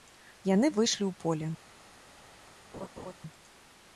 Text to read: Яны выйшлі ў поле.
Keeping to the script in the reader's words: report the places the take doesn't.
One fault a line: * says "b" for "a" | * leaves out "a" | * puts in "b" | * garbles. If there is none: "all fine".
all fine